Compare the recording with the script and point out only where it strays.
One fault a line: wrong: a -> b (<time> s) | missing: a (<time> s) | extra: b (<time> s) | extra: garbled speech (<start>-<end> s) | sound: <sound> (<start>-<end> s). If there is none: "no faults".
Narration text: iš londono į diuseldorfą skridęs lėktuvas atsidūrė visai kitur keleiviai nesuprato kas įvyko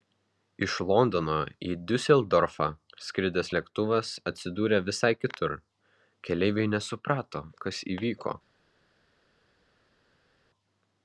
no faults